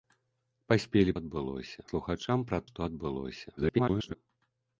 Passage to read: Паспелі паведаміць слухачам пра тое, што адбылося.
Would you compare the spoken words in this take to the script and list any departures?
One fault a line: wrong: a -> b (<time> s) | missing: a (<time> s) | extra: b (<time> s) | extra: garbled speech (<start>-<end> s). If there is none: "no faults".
wrong: паведаміць -> адбылося (1.2 s)
missing: тое (2.6 s)
extra: garbled speech (3.6-4.1 s)